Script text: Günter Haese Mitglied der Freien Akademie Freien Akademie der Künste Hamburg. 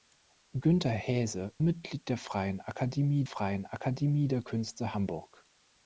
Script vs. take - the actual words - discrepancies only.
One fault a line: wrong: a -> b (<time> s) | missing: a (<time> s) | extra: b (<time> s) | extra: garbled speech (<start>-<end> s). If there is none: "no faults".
no faults